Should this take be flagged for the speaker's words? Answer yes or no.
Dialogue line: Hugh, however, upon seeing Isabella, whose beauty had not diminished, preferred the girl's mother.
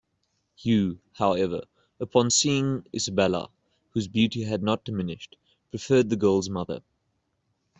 no